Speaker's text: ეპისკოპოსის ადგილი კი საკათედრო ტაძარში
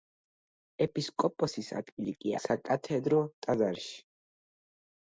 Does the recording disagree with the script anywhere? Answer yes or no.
no